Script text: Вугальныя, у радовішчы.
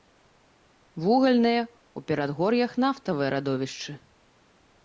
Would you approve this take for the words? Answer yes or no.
no